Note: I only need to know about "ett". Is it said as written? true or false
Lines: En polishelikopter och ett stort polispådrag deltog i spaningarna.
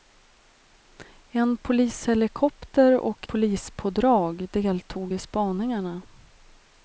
false